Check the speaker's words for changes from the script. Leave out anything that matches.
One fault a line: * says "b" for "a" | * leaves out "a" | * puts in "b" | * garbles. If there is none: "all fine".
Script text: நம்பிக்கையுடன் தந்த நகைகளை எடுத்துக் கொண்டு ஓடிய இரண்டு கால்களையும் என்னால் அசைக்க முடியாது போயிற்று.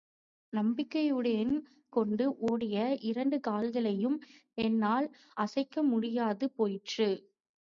* leaves out "தந்த நகைகளை எடுத்துக்"